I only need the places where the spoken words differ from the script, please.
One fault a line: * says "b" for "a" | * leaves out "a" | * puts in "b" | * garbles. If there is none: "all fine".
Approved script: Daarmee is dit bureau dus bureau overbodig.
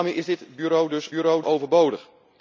all fine